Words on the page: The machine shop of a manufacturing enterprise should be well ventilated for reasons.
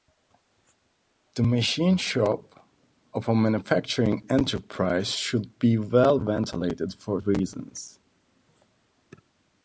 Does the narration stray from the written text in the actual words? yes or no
no